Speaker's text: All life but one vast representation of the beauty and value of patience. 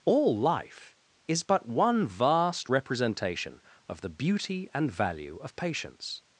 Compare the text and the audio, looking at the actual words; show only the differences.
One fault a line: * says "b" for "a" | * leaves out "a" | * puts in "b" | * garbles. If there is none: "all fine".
* puts in "is"